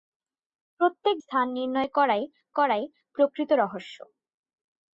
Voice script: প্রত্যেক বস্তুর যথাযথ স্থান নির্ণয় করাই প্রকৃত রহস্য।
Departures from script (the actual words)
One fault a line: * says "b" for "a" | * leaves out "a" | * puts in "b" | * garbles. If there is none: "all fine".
* leaves out "বস্তুর যথাযথ"
* puts in "করাই"